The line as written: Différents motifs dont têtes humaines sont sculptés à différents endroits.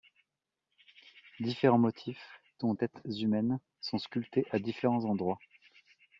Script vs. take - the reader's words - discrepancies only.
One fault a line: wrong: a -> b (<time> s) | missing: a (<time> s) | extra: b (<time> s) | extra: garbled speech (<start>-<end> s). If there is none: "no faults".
no faults